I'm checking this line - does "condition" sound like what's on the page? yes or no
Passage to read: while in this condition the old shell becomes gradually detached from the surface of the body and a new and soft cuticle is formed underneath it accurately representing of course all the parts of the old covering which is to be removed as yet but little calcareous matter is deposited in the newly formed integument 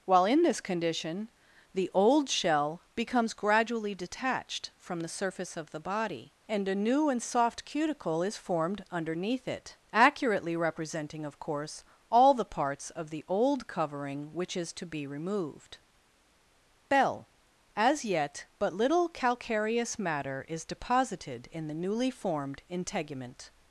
yes